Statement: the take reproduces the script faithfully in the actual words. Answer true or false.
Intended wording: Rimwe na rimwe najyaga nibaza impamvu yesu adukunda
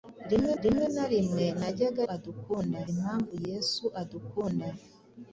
false